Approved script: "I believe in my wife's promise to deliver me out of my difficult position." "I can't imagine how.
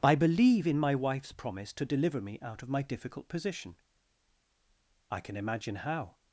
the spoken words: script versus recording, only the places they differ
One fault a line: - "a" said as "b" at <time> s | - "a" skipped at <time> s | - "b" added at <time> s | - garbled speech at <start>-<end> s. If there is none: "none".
- "can't" said as "can" at 5.2 s